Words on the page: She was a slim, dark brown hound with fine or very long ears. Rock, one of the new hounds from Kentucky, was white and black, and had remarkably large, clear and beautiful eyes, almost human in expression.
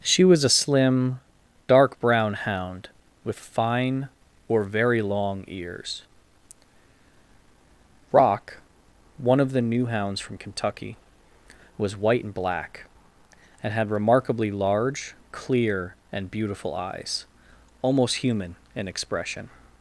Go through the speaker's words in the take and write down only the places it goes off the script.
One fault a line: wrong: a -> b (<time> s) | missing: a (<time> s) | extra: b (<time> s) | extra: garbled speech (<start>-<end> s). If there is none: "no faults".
no faults